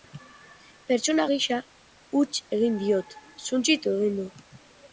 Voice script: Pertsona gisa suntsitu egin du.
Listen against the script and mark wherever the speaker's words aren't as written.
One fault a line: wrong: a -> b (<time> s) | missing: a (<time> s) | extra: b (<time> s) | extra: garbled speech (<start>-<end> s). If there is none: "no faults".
extra: huts egin diot (2.2 s)